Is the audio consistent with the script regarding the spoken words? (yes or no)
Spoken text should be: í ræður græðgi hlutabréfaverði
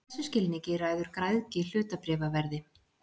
no